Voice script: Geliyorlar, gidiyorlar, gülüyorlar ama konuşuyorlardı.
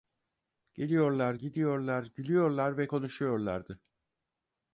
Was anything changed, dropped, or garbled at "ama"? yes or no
yes